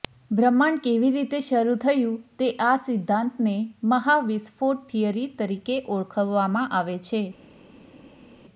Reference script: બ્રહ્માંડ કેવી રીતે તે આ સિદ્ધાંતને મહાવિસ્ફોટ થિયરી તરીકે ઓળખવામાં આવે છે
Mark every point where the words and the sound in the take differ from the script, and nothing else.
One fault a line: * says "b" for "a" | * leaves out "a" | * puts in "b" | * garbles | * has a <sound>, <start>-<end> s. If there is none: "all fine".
* puts in "શરૂ થયું"